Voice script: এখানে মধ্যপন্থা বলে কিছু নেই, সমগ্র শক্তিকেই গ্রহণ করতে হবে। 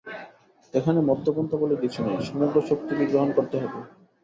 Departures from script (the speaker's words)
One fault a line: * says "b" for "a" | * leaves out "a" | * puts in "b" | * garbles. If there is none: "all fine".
all fine